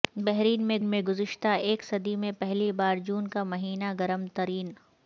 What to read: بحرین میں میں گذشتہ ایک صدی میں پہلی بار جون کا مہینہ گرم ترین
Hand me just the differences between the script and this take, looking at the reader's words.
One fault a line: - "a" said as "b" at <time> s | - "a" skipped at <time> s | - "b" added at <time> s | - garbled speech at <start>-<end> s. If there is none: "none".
none